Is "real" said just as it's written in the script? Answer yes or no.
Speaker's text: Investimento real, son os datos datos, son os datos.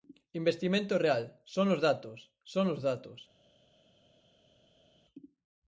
yes